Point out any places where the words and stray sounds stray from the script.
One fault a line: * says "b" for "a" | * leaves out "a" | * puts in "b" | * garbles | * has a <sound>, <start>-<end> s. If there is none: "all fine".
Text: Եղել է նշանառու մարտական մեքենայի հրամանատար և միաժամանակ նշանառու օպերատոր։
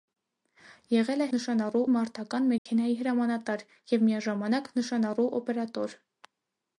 * has a dropout, 2.6-2.7 s